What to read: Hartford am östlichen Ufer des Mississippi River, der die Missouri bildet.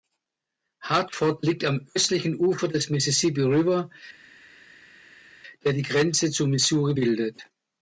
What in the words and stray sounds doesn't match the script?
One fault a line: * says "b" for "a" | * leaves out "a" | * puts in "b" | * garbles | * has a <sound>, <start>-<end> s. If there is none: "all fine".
* puts in "liegt"
* puts in "Grenze zu"